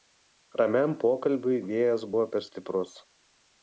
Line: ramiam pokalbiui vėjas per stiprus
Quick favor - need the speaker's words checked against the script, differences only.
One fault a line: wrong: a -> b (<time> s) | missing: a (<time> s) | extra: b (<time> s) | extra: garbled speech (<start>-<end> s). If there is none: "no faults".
extra: buvo (2.1 s)